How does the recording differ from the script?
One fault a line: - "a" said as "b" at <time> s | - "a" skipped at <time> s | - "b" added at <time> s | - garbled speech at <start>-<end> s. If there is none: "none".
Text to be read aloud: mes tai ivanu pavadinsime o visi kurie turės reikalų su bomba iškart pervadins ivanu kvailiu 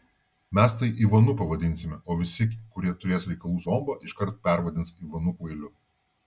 - "su" skipped at 3.6 s